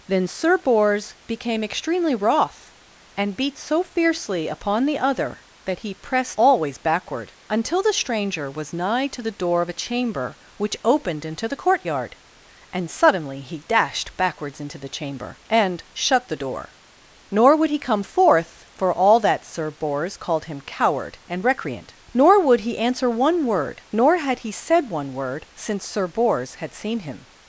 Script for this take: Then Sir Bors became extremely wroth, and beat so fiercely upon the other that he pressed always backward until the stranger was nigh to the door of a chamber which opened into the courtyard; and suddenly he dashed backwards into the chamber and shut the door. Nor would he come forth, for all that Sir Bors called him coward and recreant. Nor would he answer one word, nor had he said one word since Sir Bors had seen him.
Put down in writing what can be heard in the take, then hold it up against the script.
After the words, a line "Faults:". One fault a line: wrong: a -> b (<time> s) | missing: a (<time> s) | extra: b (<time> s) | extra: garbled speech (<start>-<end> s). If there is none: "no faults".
Then Sir Bors became extremely wroth, and beat so fiercely upon the other that he pressed always backward until the stranger was nigh to the door of a chamber which opened into the courtyard; and suddenly he dashed backwards into the chamber and shut the door. Nor would he come forth, for all that Sir Bors called him coward and recreant. Nor would he answer one word, nor had he said one word since Sir Bors had seen him.
Faults:
no faults